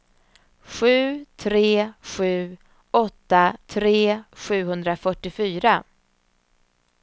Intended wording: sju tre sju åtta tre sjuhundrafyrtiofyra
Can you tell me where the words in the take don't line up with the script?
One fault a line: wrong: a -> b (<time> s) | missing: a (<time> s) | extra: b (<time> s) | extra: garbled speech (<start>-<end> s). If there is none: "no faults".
no faults